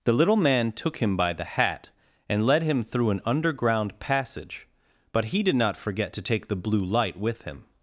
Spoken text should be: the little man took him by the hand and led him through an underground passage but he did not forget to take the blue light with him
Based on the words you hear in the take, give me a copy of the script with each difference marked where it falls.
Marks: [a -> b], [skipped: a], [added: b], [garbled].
the little man took him by the [hand -> hat] and led him through an underground passage but he did not forget to take the blue light with him